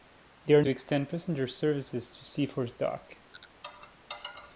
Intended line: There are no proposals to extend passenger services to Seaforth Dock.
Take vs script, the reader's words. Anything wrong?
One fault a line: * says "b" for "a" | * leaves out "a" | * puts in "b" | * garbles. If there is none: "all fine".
* leaves out "no proposals"